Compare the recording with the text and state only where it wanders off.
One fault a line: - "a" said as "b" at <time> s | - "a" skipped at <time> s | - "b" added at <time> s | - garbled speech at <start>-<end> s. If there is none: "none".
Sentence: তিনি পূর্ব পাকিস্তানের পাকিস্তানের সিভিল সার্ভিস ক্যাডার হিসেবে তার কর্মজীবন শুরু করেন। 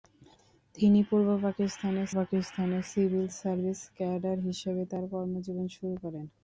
none